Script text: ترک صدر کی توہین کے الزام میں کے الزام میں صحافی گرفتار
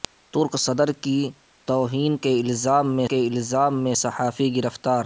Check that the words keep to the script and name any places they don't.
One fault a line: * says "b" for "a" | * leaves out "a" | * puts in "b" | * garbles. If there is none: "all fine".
all fine